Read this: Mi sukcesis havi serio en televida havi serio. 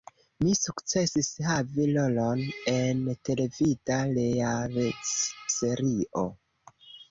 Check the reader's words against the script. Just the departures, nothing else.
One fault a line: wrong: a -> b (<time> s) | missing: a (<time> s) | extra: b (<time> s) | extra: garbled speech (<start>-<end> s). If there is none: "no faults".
wrong: serio -> rolon (2.0 s)
wrong: havi -> realec (4.2 s)